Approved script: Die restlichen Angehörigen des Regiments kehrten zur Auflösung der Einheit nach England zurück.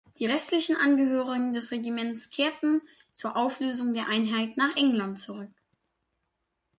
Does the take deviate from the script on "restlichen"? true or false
false